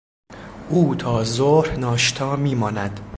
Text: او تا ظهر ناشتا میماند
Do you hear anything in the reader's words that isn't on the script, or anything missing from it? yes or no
no